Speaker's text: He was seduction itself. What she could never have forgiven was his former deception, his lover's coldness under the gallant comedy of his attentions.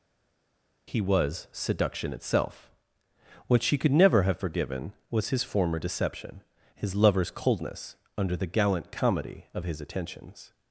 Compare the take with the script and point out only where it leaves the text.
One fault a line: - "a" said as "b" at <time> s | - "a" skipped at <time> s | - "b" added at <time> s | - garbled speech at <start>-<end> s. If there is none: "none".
none